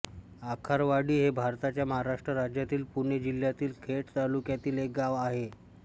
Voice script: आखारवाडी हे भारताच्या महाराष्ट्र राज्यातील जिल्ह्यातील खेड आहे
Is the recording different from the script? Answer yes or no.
yes